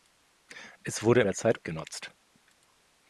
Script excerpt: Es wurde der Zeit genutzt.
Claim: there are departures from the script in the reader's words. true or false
false